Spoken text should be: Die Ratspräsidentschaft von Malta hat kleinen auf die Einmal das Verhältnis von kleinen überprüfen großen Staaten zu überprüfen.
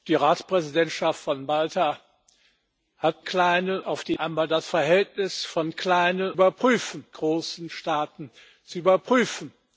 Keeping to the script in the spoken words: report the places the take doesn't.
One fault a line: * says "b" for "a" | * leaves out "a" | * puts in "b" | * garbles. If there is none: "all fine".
all fine